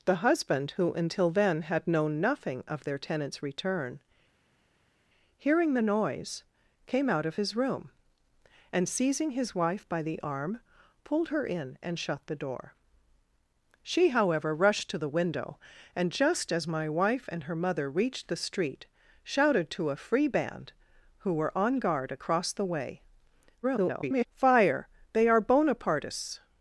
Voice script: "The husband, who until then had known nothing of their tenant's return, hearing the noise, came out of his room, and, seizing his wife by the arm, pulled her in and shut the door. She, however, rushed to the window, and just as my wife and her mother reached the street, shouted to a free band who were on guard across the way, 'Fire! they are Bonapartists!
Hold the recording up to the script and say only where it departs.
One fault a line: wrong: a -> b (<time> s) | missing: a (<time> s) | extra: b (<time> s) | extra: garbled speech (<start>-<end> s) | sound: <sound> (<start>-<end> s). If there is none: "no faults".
extra: garbled speech (23.6-24.3 s)